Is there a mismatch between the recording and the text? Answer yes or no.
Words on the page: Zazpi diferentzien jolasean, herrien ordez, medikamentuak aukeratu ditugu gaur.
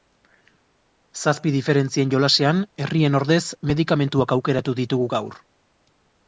no